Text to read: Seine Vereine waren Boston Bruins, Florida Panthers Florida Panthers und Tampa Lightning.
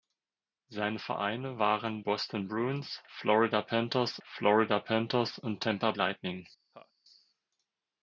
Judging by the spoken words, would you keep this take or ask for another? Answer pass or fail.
pass